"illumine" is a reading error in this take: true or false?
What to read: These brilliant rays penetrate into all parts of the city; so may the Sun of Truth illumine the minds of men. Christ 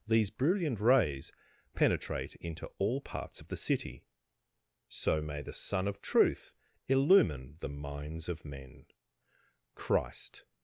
false